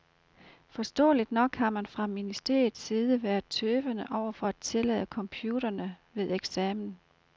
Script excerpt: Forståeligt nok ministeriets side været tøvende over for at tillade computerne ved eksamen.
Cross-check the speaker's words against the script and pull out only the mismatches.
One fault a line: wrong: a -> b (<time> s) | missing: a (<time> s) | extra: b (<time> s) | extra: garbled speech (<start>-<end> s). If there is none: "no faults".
extra: har man fra (1.6 s)